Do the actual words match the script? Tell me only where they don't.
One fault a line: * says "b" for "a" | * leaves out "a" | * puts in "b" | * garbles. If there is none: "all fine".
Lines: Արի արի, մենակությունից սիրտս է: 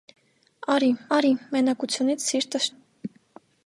all fine